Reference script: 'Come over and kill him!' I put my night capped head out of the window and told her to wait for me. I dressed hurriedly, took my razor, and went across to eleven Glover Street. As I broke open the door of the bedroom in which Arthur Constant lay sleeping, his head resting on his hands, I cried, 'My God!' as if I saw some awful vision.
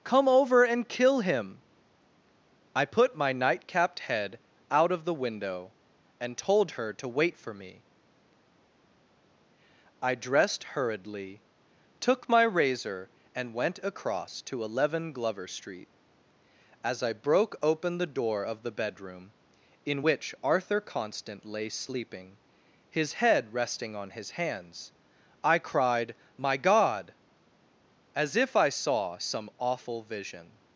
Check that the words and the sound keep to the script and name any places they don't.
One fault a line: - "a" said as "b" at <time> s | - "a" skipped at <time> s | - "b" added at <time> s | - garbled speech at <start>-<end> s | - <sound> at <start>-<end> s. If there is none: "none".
none